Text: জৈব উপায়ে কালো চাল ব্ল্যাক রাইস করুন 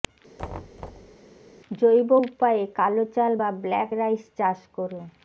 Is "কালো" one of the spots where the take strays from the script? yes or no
no